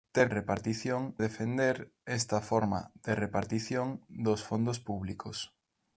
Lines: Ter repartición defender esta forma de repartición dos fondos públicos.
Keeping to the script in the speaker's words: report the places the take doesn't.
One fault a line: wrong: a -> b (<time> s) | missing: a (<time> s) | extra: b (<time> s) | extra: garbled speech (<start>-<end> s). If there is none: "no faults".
no faults